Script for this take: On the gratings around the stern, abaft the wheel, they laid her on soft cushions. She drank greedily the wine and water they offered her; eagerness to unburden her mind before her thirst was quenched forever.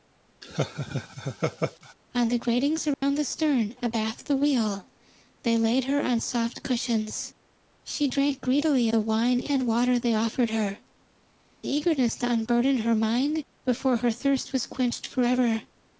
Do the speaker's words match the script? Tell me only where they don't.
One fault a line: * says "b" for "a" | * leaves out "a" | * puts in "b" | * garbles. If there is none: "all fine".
all fine